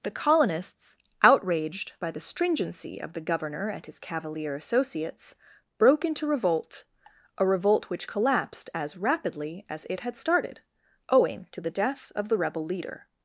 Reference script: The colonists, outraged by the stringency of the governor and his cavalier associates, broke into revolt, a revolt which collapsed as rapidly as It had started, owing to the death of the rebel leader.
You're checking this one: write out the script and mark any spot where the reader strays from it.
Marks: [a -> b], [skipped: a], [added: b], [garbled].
The colonists, outraged by the stringency of the governor and his cavalier associates, broke into revolt, a revolt which collapsed as rapidly as It had started, owing to the death of the rebel leader.